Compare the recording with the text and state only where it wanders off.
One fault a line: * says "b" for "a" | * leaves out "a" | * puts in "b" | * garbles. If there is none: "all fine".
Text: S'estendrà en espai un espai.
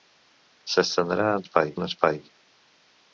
all fine